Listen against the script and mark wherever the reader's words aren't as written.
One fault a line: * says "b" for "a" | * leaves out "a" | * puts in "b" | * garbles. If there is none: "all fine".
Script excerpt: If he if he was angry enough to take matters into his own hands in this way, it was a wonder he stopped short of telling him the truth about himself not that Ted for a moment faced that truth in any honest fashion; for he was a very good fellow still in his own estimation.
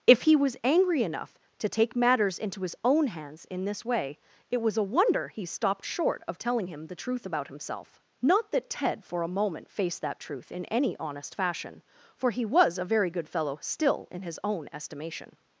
* leaves out "if he"